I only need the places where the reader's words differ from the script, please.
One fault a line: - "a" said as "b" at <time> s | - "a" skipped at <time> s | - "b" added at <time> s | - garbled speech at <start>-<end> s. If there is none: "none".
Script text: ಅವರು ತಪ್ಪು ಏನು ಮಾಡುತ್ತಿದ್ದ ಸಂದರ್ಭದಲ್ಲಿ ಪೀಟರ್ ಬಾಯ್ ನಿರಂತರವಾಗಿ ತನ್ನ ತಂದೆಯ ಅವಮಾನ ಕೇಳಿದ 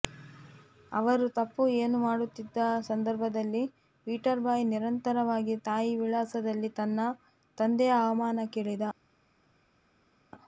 - "ತಾಯಿ ವಿಳಾಸದಲ್ಲಿ" added at 5.7 s